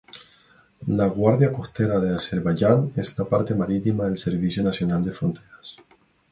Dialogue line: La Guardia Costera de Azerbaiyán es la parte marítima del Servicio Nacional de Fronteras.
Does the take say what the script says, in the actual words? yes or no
yes